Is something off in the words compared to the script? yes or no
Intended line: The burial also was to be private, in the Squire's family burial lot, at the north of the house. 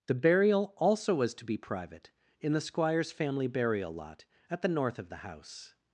no